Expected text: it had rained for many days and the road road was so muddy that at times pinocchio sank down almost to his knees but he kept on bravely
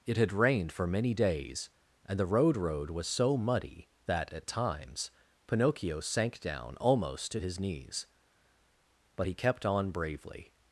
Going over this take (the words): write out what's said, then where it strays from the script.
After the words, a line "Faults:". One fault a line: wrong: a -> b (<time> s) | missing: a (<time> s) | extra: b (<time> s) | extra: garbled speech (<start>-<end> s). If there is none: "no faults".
it had rained for many days and the road road was so muddy that at times pinocchio sank down almost to his knees but he kept on bravely
Faults:
no faults